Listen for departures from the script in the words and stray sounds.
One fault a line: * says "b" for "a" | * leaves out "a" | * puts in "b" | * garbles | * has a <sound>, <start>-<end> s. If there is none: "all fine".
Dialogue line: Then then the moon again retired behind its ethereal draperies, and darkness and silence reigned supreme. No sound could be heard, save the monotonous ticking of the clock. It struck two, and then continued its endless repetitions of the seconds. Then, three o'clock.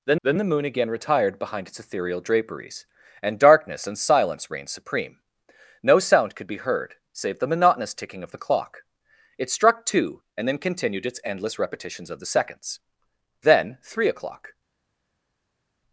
all fine